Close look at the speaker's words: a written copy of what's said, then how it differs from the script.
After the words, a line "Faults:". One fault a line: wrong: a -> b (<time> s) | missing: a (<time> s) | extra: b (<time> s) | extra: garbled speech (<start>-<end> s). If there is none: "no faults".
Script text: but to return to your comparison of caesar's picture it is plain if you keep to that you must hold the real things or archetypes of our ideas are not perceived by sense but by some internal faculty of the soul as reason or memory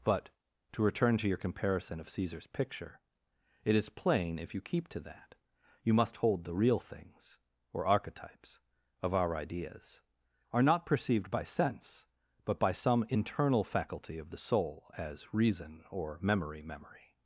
but to return to your comparison of caesar's picture it is plain if you keep to that you must hold the real things or archetypes of our ideas are not perceived by sense but by some internal faculty of the soul as reason or memory memory
Faults:
extra: memory (16.6 s)